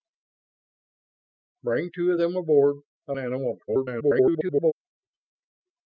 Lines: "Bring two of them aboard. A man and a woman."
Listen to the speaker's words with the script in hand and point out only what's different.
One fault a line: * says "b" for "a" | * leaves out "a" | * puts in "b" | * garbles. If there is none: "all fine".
* leaves out "man"
* garbles